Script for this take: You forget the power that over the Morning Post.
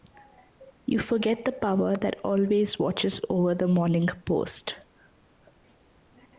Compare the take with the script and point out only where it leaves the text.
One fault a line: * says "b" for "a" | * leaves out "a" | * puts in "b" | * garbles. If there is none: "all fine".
* puts in "always watches"